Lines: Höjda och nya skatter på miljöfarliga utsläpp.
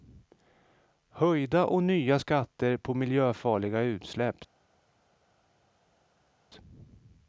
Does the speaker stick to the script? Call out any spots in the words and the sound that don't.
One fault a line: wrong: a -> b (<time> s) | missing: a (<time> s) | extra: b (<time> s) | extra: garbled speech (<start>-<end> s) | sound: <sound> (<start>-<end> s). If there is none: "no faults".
no faults